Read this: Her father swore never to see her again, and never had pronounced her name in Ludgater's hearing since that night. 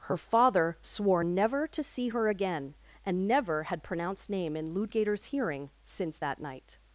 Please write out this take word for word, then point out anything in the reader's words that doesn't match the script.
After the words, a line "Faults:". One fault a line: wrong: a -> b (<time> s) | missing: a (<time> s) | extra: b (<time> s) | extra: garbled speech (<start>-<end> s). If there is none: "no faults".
Her father swore never to see her again, and never had pronounced name in Ludgater's hearing since that night.
Faults:
missing: her (4.3 s)